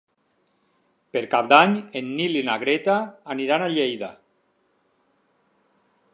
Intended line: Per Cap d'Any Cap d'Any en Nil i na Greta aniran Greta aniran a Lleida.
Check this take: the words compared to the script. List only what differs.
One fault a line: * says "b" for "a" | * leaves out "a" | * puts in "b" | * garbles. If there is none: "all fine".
* leaves out "Cap d'Any"
* leaves out "Greta aniran"